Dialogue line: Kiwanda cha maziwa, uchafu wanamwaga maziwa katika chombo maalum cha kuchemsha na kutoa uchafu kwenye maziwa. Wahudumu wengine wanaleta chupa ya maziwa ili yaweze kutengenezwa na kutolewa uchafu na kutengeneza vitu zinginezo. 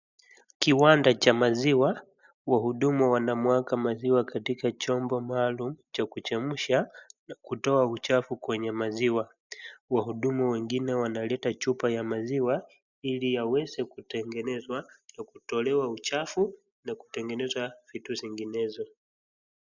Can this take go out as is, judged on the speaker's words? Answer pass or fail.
fail